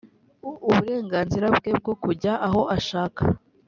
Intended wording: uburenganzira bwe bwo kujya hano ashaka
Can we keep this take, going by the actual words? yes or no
no